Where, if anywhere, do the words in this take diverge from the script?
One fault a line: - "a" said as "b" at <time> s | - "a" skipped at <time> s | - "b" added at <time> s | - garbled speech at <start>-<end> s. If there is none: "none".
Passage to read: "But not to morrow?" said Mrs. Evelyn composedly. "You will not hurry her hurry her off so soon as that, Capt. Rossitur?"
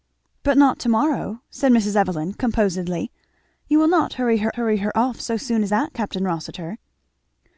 none